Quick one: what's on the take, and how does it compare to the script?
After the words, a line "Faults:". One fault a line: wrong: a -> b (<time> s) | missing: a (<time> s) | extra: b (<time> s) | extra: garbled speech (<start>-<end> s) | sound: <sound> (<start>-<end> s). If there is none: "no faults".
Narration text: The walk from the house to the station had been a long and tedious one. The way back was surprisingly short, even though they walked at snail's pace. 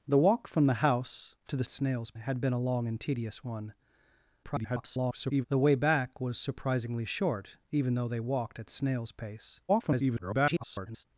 The walk from the house to the snail's had been a long and tedious one. [garbled] The way back was surprisingly short, even though they walked at snail's pace. [garbled]
Faults:
wrong: station -> snail's (1.7 s)
extra: garbled speech (4.4-5.5 s)
extra: garbled speech (9.7-11.0 s)